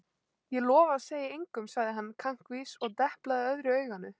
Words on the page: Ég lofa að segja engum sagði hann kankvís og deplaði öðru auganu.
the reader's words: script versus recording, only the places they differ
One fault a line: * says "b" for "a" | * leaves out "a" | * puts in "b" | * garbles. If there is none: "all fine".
all fine